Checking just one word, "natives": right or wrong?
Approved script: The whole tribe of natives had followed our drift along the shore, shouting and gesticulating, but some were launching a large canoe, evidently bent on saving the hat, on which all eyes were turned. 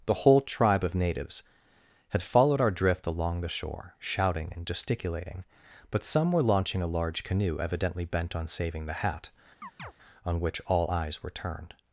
right